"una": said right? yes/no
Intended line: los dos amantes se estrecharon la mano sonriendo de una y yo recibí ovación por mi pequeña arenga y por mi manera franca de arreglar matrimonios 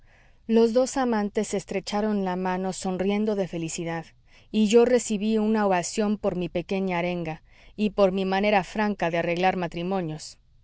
no